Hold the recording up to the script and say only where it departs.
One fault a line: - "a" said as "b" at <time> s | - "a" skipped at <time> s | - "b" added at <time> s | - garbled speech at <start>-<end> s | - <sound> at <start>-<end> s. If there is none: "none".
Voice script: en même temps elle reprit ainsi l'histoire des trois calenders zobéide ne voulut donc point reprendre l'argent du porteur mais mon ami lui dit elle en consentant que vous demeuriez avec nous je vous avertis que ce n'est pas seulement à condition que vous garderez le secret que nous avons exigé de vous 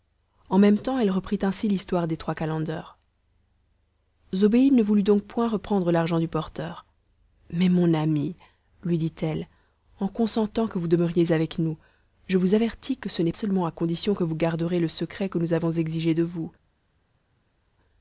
- "pas" skipped at 13.3 s